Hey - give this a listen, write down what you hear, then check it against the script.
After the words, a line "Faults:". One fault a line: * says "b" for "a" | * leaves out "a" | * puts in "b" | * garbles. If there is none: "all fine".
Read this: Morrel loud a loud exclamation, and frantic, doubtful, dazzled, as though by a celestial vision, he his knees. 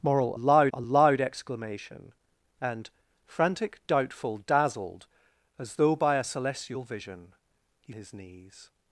Morrel loud a loud exclamation, and frantic, doubtful, dazzled, as though by a celestial vision, he his knees.
Faults:
all fine